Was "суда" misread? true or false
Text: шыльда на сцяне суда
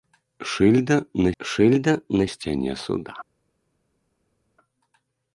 false